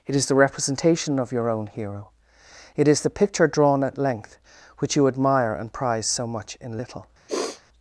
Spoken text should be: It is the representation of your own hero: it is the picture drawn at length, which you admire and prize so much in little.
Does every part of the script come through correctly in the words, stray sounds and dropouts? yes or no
no